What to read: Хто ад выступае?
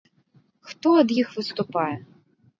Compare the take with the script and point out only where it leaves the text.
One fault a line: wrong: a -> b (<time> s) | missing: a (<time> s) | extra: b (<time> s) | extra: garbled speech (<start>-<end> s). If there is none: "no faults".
extra: іх (1.2 s)